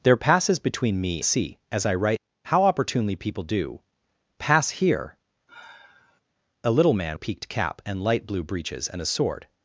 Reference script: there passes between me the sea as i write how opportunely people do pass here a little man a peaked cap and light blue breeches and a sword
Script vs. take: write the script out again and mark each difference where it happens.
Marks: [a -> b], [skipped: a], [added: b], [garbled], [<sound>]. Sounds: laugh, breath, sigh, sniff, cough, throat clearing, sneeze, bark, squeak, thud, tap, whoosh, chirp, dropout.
there passes between me the sea as i write how opportunely people do pass here [sigh] a little man a peaked cap and light blue breeches and a sword